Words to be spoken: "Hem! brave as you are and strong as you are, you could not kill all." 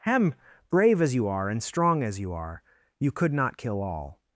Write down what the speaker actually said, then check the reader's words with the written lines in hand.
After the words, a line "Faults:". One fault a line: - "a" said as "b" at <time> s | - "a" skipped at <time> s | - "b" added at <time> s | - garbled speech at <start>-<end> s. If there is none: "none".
"Hem! brave as you are and strong as you are, you could not kill all."
Faults:
none